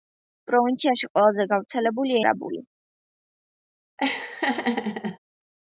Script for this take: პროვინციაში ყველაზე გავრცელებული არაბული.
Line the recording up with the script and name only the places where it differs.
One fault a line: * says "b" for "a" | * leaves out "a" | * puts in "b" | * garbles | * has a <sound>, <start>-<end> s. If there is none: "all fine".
* has a laugh, 4.0-5.2 s